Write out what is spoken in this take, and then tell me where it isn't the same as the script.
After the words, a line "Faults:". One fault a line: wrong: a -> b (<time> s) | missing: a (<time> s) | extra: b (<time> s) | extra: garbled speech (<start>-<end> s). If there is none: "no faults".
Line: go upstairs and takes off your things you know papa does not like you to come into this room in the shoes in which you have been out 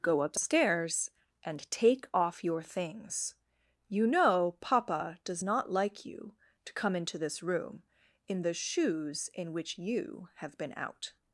go upstairs and take off your things you know papa does not like you to come into this room in the shoes in which you have been out
Faults:
wrong: takes -> take (1.7 s)